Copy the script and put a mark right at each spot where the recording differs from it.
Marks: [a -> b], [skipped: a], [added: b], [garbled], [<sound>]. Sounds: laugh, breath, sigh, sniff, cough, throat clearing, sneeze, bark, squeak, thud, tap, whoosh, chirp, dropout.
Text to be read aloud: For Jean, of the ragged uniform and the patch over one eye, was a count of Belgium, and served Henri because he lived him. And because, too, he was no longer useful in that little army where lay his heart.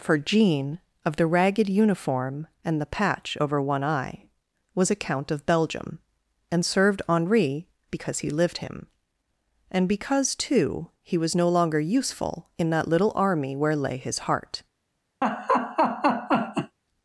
For Jean, of the ragged uniform and the patch over one eye, was a count of Belgium, and served Henri because he lived him. And because, too, he was no longer useful in that little army where lay his heart. [laugh]